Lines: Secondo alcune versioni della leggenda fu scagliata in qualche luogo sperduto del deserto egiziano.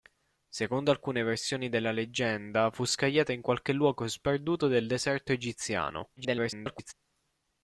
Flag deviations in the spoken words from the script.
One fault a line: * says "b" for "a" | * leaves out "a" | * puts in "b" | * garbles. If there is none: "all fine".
* garbles